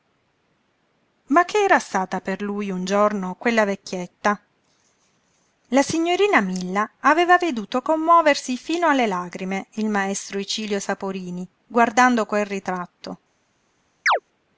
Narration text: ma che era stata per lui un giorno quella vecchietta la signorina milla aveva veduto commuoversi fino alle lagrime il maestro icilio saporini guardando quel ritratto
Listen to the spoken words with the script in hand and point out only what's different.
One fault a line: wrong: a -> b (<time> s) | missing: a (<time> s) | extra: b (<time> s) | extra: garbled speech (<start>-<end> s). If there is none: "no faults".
no faults